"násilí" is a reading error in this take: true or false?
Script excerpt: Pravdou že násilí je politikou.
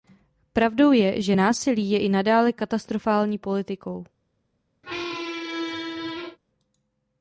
false